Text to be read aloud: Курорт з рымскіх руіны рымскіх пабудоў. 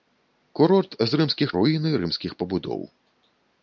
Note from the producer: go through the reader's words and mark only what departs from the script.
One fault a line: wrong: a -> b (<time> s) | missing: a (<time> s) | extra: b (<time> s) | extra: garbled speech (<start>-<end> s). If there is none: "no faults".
no faults